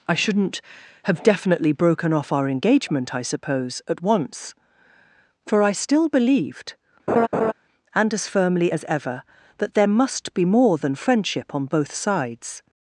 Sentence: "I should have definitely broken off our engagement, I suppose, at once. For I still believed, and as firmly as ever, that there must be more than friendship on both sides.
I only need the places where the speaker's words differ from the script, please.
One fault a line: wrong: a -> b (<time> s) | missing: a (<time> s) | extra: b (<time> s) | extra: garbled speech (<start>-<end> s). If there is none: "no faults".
wrong: should -> shouldn't (0.1 s)